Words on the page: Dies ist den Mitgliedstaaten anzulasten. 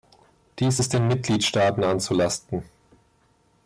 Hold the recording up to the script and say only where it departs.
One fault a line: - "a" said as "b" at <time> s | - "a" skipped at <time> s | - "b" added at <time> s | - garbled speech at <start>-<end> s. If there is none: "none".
none